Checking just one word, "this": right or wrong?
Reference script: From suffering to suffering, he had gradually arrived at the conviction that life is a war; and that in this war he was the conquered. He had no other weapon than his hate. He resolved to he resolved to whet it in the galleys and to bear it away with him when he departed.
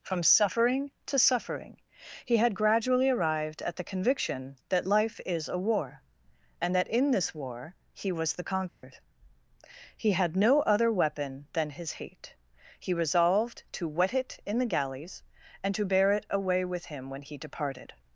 right